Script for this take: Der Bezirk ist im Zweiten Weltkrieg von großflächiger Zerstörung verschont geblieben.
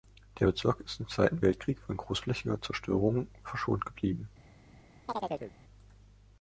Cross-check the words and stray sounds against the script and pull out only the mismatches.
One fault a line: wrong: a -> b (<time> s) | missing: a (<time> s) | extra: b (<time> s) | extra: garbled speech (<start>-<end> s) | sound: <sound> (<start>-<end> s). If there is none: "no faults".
sound: chirp (5.1-5.5 s)